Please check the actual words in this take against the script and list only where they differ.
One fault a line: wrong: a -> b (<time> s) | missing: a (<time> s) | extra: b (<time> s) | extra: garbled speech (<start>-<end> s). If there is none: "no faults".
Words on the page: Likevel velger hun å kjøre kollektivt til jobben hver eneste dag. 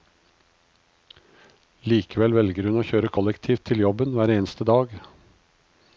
no faults